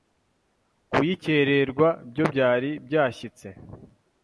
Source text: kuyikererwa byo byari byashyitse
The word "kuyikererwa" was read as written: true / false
true